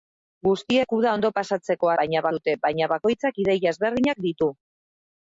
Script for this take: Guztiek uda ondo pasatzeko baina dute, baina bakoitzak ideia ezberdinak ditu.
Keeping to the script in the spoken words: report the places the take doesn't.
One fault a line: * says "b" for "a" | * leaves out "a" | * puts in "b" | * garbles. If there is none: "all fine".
all fine